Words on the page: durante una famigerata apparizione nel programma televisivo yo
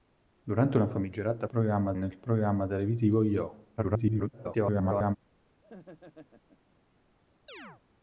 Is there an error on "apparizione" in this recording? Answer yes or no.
yes